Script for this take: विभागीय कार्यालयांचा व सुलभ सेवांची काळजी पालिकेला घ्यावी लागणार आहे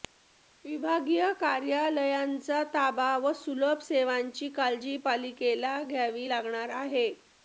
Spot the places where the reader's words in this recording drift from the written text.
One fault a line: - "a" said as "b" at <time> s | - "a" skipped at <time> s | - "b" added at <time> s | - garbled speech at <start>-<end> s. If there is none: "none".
- "ताबा" added at 2.7 s